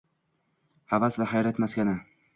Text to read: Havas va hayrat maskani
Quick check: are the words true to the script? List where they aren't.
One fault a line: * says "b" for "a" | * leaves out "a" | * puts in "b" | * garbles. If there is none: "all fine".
all fine